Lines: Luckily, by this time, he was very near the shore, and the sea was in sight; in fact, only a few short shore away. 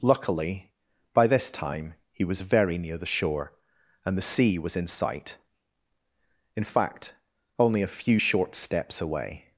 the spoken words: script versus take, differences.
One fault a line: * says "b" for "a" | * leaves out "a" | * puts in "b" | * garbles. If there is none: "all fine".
* says "steps" for "shore"